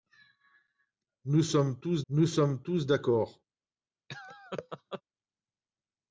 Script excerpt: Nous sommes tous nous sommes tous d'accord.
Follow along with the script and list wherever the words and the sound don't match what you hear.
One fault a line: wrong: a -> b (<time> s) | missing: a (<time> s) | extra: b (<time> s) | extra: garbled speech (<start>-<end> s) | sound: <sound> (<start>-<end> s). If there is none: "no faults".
sound: laugh (4.1-5.0 s)